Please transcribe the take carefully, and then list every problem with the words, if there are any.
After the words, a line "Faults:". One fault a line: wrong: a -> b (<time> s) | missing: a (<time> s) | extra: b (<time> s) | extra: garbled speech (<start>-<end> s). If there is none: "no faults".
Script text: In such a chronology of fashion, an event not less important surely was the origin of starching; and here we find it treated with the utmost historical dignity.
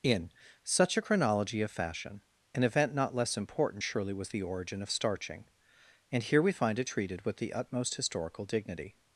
In such a chronology of fashion, an event not less important surely was the origin of starching; and here we find it treated with the utmost historical dignity.
Faults:
no faults